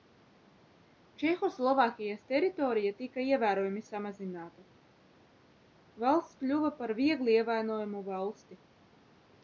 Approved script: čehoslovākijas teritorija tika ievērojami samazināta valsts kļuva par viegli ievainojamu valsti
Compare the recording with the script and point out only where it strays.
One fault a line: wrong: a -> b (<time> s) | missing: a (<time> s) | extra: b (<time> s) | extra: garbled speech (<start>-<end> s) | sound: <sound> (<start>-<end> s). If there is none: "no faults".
no faults